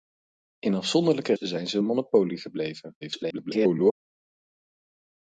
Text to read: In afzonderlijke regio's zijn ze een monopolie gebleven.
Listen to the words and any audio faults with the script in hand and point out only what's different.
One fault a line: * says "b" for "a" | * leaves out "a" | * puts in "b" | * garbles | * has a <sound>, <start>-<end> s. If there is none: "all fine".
* leaves out "regio's"
* garbles